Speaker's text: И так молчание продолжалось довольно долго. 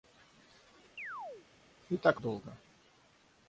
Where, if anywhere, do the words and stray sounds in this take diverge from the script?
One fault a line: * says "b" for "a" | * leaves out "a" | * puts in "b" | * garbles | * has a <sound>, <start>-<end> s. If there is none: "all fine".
* has a chirp, 1.0-1.5 s
* leaves out "молчание продолжалось довольно"